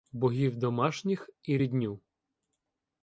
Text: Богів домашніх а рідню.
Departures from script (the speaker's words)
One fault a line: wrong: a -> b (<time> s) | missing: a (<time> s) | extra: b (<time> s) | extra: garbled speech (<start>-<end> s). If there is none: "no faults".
wrong: а -> і (1.4 s)